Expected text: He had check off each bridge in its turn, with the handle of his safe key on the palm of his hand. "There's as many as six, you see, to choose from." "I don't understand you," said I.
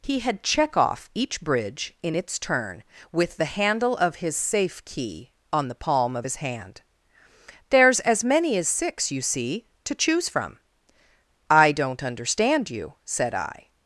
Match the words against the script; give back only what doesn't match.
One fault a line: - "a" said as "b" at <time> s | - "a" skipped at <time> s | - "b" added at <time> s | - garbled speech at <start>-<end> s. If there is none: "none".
none